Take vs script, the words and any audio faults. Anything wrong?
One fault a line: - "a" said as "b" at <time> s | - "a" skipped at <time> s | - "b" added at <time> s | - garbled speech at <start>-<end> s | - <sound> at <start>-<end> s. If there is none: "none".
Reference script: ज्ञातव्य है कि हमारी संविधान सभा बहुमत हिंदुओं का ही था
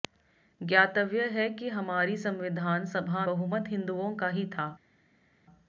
none